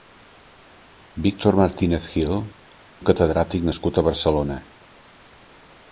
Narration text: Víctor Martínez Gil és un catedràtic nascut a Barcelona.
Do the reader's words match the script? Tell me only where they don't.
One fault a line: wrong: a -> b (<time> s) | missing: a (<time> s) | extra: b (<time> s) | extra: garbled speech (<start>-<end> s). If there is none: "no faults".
missing: és (2.4 s)